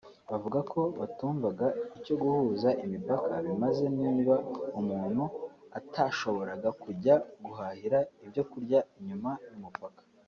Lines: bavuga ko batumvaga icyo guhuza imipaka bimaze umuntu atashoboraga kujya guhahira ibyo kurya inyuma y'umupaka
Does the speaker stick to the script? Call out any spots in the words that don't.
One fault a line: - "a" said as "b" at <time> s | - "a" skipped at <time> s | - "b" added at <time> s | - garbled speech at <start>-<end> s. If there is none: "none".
- "niba" added at 4.0 s